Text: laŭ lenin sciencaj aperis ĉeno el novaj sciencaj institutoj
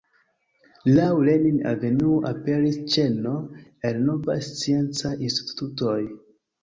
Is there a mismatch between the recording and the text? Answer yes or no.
yes